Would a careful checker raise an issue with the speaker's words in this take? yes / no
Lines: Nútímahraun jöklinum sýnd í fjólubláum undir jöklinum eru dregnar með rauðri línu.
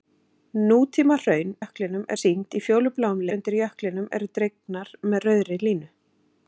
no